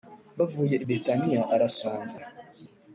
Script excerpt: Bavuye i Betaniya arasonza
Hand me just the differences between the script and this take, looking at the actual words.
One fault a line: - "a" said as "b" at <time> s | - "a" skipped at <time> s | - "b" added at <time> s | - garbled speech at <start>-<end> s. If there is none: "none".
none